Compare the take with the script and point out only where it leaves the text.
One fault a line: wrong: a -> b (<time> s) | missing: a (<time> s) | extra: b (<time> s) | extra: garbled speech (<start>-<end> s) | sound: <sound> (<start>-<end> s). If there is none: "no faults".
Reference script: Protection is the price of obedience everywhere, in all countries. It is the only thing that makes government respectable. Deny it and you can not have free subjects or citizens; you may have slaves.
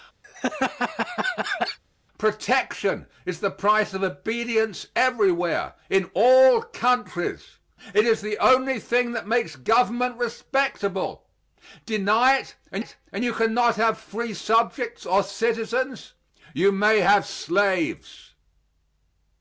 sound: laugh (0.2-1.8 s)
extra: it and (12.8 s)